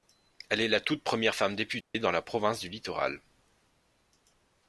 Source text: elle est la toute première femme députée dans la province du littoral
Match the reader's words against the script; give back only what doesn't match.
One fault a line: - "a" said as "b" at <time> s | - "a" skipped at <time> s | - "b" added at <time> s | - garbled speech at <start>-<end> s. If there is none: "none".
none